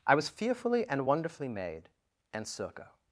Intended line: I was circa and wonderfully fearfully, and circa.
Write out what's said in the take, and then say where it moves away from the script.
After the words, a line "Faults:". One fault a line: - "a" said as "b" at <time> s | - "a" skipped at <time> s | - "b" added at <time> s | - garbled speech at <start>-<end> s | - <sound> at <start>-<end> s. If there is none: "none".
I was fearfully and wonderfully made, and circa.
Faults:
- "circa" said as "fearfully" at 0.3 s
- "fearfully" said as "made" at 1.5 s